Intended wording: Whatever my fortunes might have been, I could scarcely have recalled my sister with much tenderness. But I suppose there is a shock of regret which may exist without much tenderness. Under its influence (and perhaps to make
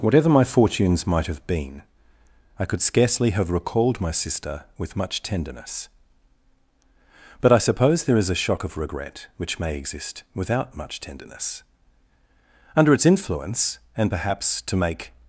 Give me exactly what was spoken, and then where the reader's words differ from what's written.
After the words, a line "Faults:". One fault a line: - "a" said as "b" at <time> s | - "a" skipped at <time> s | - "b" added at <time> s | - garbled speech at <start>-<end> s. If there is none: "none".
Whatever my fortunes might have been, I could scarcely have recalled my sister with much tenderness. But I suppose there is a shock of regret which may exist without much tenderness. Under its influence (and perhaps to make
Faults:
none